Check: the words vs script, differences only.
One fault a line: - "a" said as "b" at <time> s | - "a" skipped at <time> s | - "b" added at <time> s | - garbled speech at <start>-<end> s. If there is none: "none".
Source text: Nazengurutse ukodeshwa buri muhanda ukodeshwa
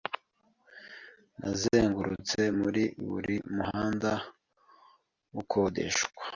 - "ukodeshwa" said as "muri" at 2.6 s